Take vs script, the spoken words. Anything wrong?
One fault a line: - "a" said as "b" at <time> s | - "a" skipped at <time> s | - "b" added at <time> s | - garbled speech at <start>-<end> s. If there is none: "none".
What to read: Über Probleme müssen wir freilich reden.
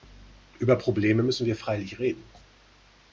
none